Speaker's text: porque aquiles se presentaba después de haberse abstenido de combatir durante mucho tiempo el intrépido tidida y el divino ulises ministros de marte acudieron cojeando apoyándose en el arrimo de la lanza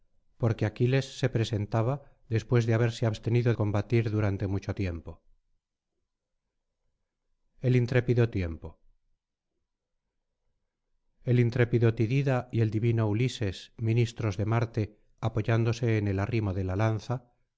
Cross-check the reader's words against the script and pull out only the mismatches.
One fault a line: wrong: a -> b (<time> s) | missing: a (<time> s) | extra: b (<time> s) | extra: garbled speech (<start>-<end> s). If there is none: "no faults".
missing: de (3.5 s)
extra: tiempo el intrépido (8.3 s)
missing: acudieron cojeando (15.0 s)